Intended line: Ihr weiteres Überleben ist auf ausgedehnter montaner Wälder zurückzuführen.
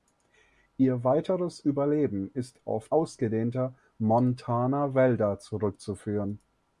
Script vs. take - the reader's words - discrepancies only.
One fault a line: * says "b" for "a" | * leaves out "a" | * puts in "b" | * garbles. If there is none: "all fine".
all fine